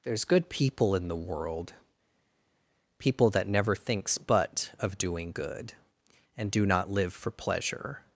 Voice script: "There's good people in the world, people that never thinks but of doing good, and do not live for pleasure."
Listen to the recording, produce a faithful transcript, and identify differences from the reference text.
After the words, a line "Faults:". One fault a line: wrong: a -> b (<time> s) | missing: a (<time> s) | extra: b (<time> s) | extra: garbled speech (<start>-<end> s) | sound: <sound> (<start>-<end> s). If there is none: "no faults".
"There's good people in the world, people that never thinks but of doing good, and do not live for pleasure."
Faults:
no faults